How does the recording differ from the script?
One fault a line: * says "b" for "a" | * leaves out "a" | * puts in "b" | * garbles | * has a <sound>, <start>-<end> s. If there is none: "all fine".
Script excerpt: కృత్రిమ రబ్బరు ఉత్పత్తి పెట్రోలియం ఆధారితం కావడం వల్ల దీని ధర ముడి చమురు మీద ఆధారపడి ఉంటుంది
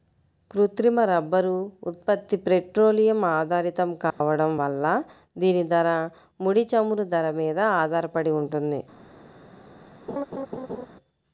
* has a dropout, 4.1-4.2 s
* puts in "ధర"
* has a laugh, 10.1-10.9 s